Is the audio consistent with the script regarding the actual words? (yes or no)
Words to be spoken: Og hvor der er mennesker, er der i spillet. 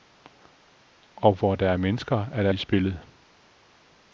yes